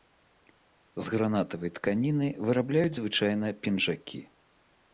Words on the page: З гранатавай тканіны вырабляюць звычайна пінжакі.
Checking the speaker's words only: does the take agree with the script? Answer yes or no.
yes